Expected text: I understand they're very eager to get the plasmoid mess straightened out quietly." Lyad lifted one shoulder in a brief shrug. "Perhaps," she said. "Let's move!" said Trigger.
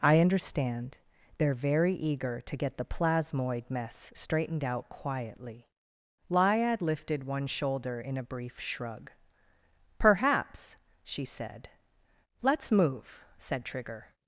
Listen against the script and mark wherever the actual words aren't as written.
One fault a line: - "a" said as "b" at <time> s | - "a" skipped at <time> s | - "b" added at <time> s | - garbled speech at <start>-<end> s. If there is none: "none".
none